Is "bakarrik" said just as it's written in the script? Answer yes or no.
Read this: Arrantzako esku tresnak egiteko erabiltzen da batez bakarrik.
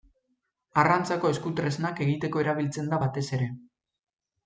no